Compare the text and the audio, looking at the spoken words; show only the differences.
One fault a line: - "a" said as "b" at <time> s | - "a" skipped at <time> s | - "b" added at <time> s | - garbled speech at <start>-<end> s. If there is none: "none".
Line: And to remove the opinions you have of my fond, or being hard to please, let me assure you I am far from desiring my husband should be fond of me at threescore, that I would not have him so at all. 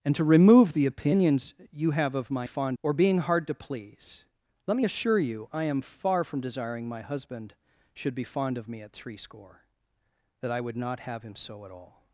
none